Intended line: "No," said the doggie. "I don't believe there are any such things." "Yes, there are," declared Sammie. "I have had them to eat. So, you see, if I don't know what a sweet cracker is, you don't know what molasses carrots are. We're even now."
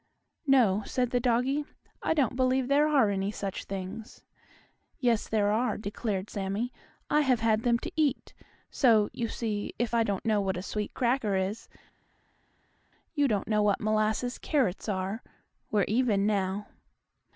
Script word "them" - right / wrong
right